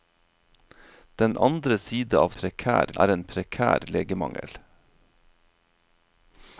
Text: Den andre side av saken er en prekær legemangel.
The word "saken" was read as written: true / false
false